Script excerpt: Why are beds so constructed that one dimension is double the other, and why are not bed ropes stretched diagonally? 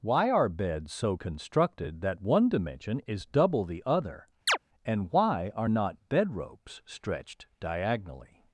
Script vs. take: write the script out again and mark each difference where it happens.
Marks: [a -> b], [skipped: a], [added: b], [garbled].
Why are beds so constructed that one dimension is double the other, and why are not bed ropes stretched diagonally?